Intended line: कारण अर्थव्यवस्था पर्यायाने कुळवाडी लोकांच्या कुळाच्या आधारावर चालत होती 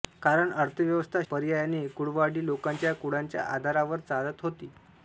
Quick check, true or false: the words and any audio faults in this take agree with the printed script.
true